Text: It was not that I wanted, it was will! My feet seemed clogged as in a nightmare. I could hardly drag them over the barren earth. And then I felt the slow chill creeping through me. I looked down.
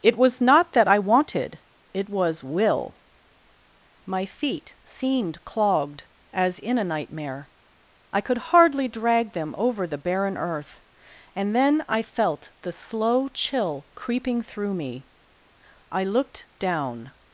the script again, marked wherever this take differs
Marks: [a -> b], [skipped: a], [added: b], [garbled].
It was not that I wanted, it was will! My feet seemed clogged as in a nightmare. I could hardly drag them over the barren earth. And then I felt the slow chill creeping through me. I looked down.